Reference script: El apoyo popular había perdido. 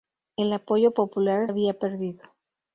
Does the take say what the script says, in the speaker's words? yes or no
yes